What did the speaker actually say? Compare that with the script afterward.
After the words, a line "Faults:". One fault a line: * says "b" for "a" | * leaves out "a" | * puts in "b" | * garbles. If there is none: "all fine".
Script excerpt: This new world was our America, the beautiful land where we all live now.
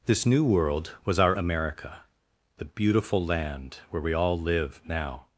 This new world was our America, the beautiful land where we all live now.
Faults:
all fine